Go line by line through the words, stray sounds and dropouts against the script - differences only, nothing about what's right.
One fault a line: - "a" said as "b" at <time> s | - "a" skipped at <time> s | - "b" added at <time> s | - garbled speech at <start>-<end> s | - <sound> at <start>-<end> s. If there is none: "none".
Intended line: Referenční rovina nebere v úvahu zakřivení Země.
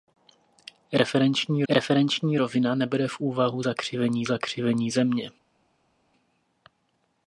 - "referenční" added at 1.7 s
- "zakřivení" added at 4.2 s